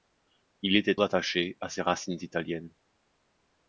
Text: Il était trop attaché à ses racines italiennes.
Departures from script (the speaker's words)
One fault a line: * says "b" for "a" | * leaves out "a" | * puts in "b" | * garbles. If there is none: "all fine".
* leaves out "trop"